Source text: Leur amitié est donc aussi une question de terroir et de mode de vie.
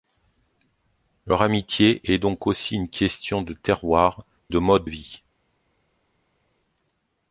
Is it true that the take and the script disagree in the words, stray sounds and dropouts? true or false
true